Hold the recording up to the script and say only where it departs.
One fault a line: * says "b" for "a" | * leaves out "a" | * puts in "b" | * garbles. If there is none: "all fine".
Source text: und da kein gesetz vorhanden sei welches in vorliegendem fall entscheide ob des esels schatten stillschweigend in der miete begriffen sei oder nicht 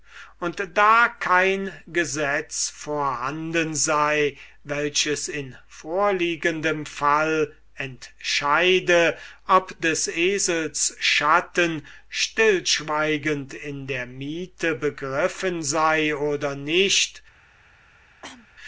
all fine